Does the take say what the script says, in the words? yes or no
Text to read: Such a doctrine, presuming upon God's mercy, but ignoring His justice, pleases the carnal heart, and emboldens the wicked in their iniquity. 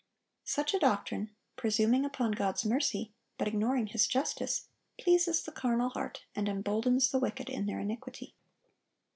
yes